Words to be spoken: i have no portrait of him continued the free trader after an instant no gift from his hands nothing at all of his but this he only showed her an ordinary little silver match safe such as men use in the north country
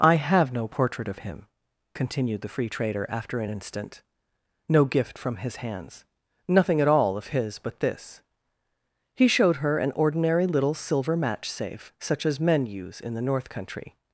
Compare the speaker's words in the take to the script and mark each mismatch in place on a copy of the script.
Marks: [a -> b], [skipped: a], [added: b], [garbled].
i have no portrait of him continued the free trader after an instant no gift from his hands nothing at all of his but this he [skipped: only] showed her an ordinary little silver match safe such as men use in the north country